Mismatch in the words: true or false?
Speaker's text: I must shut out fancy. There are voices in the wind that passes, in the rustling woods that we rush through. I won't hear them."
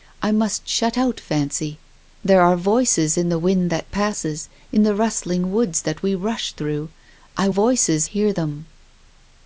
true